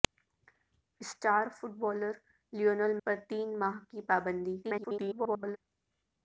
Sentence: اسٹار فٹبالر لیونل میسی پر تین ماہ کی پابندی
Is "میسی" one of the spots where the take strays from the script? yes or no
yes